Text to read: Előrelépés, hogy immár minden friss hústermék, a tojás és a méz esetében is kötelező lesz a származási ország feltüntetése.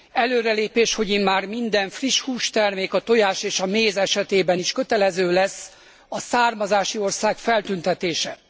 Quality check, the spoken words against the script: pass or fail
pass